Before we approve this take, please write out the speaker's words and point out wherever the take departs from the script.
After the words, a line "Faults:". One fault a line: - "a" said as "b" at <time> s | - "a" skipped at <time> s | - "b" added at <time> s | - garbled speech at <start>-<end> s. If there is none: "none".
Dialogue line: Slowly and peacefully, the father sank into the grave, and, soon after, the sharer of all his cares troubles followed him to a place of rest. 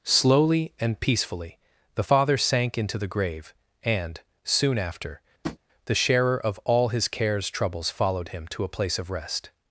Slowly and peacefully, the father sank into the grave, and, soon after, the sharer of all his cares troubles followed him to a place of rest.
Faults:
none